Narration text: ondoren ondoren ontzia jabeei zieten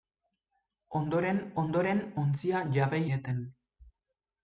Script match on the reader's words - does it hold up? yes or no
yes